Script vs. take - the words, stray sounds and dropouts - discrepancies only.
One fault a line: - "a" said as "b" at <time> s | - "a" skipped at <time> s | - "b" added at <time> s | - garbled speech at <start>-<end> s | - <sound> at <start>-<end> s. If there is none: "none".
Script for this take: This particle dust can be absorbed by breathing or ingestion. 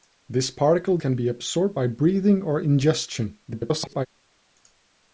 - "dust" skipped at 1.0 s
- garbled speech at 3.5-4.1 s